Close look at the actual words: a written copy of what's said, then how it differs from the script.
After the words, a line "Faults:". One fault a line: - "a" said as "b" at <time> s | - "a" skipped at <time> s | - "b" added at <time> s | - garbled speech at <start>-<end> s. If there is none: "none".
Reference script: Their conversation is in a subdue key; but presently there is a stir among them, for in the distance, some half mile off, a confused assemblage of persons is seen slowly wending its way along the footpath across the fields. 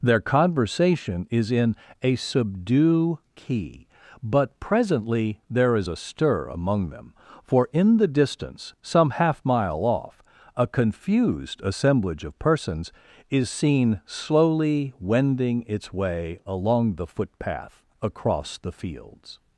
Their conversation is in a subdue key; but presently there is a stir among them, for in the distance, some half mile off, a confused assemblage of persons is seen slowly wending its way along the footpath across the fields.
Faults:
none